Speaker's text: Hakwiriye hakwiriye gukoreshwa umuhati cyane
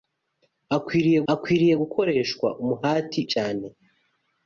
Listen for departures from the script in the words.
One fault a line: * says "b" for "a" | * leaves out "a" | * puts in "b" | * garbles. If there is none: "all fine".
all fine